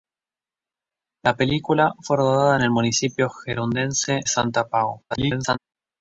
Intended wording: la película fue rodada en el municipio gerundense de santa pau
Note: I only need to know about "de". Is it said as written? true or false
false